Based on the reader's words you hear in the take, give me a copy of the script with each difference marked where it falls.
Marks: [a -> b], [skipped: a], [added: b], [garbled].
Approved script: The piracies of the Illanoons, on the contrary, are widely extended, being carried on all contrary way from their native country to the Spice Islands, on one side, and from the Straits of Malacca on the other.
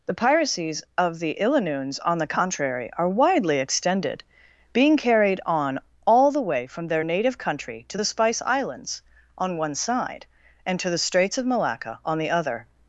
The piracies of the Illanoons, on the contrary, are widely extended, being carried on all [contrary -> the] way from their native country to the Spice Islands, on one side, and [from -> to] the Straits of Malacca on the other.